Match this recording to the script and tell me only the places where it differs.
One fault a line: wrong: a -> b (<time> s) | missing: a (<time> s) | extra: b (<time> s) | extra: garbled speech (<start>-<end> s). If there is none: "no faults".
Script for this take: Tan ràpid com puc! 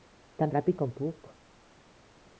no faults